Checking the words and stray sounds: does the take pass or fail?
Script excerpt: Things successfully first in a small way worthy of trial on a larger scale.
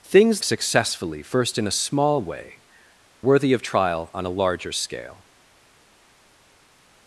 pass